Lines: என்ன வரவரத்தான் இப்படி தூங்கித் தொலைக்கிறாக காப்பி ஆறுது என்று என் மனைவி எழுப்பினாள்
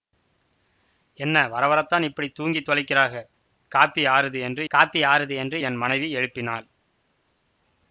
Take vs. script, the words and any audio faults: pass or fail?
fail